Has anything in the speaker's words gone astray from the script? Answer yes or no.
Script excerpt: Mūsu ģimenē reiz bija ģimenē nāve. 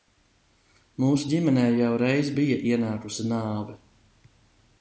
yes